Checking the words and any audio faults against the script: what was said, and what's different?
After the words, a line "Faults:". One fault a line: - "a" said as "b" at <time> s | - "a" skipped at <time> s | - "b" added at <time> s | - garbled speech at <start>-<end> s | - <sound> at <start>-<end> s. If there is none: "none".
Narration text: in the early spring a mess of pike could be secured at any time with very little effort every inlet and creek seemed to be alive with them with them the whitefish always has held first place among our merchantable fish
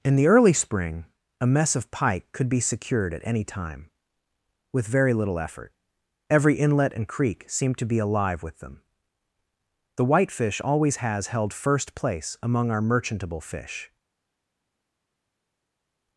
in the early spring a mess of pike could be secured at any time with very little effort every inlet and creek seemed to be alive with them the whitefish always has held first place among our merchantable fish
Faults:
- "with them" skipped at 8.8 s